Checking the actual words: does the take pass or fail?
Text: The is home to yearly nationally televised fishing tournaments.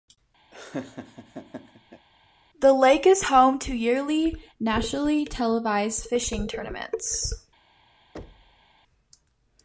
fail